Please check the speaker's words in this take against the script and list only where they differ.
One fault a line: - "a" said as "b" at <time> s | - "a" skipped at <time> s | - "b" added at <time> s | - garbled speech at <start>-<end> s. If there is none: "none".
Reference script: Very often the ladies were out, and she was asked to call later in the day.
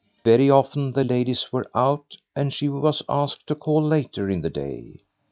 none